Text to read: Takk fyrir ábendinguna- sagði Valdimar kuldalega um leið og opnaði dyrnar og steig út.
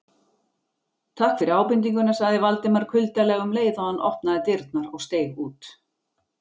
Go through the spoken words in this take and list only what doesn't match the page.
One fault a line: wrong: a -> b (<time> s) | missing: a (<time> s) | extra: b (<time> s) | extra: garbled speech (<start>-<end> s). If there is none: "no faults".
extra: hann (3.9 s)